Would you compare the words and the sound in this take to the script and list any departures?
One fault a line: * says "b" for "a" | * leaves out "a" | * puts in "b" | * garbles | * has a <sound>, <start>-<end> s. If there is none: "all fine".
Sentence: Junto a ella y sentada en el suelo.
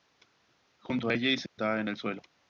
* has a dropout, 1.5-1.6 s